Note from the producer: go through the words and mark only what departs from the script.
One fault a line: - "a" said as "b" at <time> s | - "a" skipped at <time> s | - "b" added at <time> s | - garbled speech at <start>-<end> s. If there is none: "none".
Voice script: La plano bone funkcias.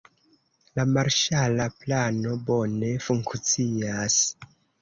- "marŝala" added at 0.9 s